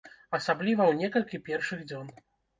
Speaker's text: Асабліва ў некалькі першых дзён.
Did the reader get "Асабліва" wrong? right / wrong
right